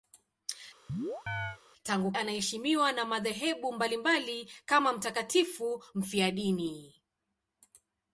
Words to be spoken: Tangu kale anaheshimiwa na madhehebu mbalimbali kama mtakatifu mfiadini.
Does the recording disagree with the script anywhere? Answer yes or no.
yes